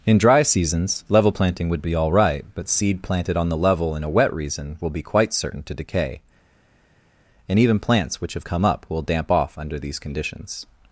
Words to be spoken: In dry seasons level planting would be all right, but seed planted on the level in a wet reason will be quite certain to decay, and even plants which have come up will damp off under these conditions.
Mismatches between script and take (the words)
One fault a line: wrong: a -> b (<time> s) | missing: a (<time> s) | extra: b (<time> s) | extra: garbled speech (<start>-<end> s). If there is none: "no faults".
no faults